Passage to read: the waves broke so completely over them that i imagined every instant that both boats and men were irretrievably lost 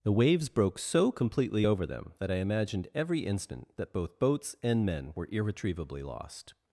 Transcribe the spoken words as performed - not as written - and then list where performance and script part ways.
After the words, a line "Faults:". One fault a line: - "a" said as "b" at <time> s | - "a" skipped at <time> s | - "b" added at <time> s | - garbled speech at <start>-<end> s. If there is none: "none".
the waves broke so completely over them that i imagined every instant that both boats and men were irretrievably lost
Faults:
none